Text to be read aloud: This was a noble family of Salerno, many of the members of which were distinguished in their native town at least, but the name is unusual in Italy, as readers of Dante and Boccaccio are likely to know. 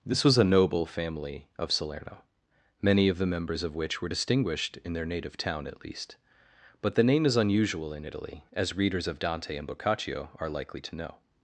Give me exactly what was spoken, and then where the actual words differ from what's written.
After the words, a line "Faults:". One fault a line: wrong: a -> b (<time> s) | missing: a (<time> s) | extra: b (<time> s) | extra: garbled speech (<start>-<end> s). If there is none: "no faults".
This was a noble family of Salerno, many of the members of which were distinguished in their native town at least, but the name is unusual in Italy, as readers of Dante and Boccaccio are likely to know.
Faults:
no faults